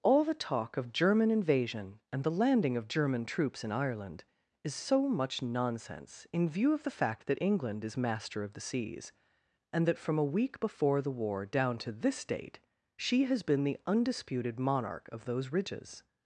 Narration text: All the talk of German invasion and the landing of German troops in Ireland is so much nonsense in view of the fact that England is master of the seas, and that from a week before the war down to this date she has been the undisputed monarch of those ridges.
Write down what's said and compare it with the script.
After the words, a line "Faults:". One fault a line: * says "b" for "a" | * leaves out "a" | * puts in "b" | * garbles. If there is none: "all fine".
All the talk of German invasion and the landing of German troops in Ireland is so much nonsense in view of the fact that England is master of the seas, and that from a week before the war down to this date she has been the undisputed monarch of those ridges.
Faults:
all fine